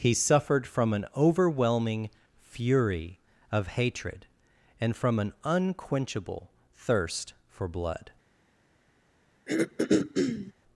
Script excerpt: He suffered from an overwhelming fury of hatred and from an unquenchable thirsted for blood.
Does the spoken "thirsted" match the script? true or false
false